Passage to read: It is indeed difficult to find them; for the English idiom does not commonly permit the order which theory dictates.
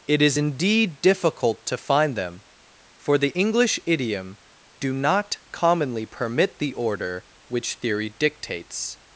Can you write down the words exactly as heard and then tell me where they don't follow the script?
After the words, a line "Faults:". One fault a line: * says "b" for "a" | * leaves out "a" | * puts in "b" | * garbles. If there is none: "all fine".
It is indeed difficult to find them; for the English idiom do not commonly permit the order which theory dictates.
Faults:
* says "do" for "does"